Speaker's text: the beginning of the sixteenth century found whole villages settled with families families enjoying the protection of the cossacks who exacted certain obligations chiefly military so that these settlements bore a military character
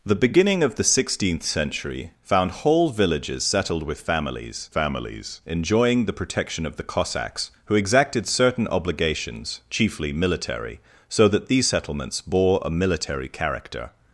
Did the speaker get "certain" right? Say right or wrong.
right